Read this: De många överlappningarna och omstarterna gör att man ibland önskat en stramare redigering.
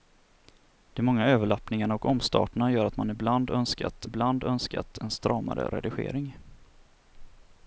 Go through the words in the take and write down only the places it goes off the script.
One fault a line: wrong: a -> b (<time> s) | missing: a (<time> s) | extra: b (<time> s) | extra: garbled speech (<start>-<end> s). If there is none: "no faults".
extra: ibland önskat (4.0 s)